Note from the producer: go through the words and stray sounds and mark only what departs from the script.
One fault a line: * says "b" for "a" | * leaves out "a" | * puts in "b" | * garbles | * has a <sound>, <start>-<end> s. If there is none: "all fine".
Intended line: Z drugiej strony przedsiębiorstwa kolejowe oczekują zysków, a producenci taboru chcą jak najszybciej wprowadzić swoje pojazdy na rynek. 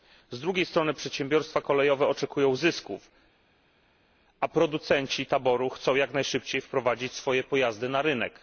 all fine